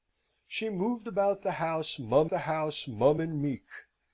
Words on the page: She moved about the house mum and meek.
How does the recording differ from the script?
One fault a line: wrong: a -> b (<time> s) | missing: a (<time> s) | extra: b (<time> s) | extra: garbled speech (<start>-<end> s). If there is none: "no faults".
extra: the house mum (2.3 s)